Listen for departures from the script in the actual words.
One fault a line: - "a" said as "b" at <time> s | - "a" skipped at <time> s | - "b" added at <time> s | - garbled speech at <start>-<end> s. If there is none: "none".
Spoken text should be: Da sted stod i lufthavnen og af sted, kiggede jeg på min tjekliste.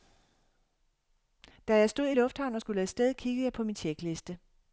- "sted" said as "jeg" at 1.8 s
- "skulle" added at 2.6 s